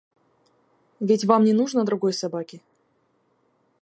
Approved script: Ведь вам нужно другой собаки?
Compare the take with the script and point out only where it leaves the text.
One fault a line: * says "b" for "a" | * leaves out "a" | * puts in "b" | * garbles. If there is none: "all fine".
* puts in "не"